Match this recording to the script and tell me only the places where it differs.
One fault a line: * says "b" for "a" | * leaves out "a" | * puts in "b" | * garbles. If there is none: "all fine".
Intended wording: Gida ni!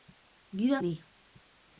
all fine